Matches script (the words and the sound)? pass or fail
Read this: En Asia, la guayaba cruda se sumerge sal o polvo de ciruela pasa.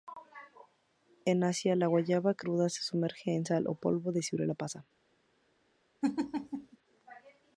fail